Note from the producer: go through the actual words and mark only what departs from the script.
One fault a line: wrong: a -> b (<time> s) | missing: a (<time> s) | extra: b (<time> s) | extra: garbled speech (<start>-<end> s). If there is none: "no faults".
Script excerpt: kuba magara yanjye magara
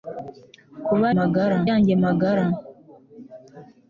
no faults